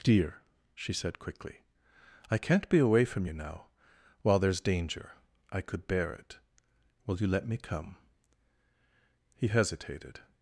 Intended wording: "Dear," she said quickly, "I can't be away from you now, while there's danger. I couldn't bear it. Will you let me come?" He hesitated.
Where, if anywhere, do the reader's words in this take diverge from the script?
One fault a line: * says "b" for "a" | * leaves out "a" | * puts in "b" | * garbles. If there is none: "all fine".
* says "could" for "couldn't"